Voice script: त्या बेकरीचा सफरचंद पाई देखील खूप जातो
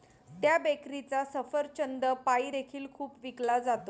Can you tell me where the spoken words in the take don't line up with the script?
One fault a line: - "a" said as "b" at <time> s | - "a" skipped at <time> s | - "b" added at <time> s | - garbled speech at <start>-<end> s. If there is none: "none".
- "विकला" added at 3.2 s